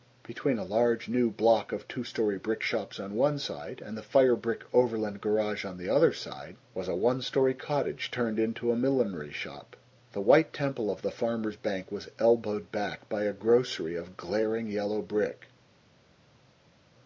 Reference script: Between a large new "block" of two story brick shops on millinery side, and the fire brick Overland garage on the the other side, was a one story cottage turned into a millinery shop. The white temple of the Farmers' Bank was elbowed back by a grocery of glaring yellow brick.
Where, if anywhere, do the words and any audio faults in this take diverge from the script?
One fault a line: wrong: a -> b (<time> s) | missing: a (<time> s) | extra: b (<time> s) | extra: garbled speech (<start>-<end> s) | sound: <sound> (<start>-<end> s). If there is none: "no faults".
wrong: millinery -> one (3.1 s)
missing: the (5.9 s)